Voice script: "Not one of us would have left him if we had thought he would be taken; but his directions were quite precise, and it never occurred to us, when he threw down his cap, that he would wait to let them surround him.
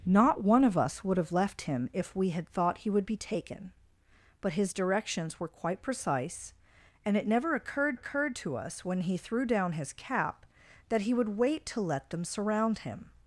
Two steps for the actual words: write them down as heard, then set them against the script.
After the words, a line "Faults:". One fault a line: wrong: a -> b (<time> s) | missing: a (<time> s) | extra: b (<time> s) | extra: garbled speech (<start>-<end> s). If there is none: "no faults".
"Not one of us would have left him if we had thought he would be taken; but his directions were quite precise, and it never occurred occurred to us, when he threw down his cap, that he would wait to let them surround him.
Faults:
extra: occurred (7.9 s)